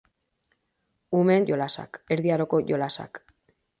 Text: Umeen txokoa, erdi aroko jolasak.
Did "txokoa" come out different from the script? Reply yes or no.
yes